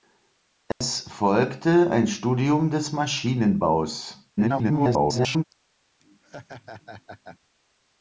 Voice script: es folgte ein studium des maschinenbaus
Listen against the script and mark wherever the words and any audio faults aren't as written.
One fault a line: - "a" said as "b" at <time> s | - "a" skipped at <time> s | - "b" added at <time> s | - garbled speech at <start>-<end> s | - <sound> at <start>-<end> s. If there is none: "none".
- dropout at 0.7-0.8 s
- garbled speech at 4.4-5.4 s
- laugh at 6.0-7.4 s